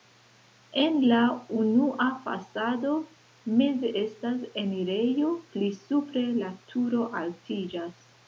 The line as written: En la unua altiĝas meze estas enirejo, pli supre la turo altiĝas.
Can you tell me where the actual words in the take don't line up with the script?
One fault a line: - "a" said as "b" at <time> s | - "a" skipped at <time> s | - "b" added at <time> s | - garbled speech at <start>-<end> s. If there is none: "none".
- "altiĝas" said as "fasado" at 2.2 s